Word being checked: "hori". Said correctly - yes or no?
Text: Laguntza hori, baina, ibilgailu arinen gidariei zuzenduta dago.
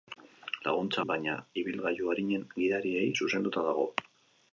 no